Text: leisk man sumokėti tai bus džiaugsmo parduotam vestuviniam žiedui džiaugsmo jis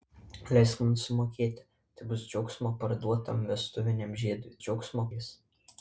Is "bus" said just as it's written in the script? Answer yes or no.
yes